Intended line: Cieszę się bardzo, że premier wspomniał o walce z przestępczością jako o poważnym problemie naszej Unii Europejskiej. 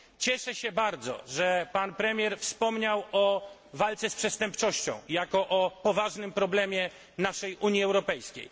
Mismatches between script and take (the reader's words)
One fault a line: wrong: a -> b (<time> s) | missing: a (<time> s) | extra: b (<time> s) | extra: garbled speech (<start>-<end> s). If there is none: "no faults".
extra: pan (1.7 s)